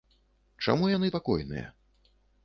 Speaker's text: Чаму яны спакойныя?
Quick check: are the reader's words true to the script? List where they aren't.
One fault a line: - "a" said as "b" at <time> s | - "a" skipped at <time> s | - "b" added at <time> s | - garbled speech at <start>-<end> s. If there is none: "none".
none